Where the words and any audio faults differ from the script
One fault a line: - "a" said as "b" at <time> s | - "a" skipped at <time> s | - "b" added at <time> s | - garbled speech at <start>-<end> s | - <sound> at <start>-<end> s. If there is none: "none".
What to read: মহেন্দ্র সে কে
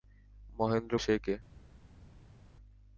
none